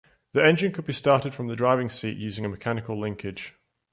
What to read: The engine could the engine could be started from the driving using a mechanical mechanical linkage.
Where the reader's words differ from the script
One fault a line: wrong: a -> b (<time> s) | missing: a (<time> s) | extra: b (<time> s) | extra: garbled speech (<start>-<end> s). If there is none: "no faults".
missing: the engine could (0.8 s)
extra: seat (1.9 s)
missing: mechanical (3.0 s)